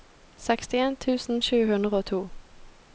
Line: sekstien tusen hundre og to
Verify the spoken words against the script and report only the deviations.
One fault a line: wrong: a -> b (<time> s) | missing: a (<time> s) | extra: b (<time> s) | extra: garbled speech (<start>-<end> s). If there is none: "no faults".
extra: sju (1.5 s)